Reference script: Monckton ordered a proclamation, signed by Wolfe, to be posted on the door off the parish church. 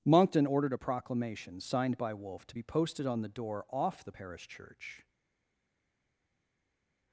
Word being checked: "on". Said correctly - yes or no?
yes